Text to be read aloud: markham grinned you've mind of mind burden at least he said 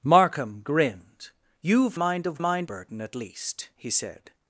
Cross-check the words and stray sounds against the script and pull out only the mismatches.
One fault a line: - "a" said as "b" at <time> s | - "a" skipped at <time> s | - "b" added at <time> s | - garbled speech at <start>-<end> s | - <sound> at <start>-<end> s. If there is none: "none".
none